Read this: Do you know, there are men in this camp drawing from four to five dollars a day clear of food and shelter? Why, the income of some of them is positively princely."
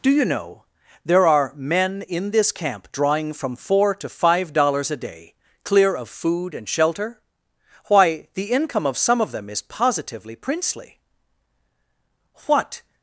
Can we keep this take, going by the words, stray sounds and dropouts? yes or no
no